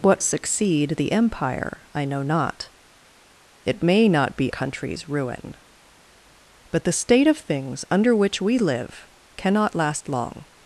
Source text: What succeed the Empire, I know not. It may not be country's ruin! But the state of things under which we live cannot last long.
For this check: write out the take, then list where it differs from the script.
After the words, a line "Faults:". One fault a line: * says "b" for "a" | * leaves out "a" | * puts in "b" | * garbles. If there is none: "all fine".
What succeed the Empire, I know not. It may not be country's ruin! But the state of things under which we live cannot last long.
Faults:
all fine